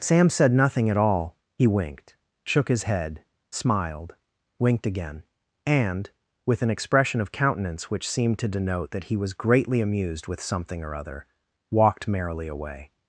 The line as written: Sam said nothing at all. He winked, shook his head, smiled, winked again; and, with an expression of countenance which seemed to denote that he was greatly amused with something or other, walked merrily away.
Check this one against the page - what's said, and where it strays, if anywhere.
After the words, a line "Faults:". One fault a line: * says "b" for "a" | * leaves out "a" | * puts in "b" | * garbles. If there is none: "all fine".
Sam said nothing at all. He winked, shook his head, smiled, winked again; and, with an expression of countenance which seemed to denote that he was greatly amused with something or other, walked merrily away.
Faults:
all fine